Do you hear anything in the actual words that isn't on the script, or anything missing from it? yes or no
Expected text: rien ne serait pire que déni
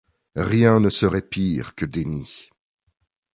no